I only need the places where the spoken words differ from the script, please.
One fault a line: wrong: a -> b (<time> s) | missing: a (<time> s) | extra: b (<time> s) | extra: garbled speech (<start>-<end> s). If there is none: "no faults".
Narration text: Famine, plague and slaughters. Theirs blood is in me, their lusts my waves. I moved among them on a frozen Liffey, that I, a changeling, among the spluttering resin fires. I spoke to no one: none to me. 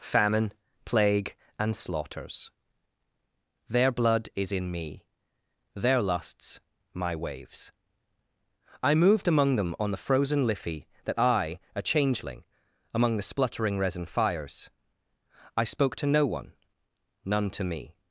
wrong: Theirs -> Their (3.7 s)
wrong: a -> the (9.9 s)